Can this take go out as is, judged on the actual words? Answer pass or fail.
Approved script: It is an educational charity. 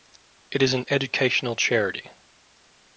pass